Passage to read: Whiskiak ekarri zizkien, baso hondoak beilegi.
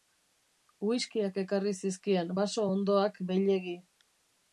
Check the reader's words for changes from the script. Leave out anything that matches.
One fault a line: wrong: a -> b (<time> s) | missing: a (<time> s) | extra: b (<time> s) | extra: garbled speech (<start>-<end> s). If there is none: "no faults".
no faults